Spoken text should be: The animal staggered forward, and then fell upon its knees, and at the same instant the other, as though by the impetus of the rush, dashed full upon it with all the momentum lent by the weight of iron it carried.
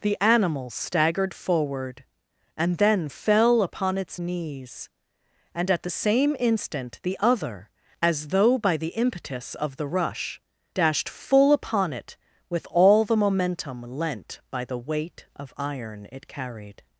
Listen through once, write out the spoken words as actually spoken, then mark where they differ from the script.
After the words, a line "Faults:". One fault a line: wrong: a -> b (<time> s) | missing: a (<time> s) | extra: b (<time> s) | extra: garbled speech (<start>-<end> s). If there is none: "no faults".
The animal staggered forward, and then fell upon its knees, and at the same instant the other, as though by the impetus of the rush, dashed full upon it with all the momentum lent by the weight of iron it carried.
Faults:
no faults